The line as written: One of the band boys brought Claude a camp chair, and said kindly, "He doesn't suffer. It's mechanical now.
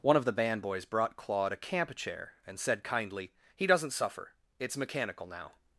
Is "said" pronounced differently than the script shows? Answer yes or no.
no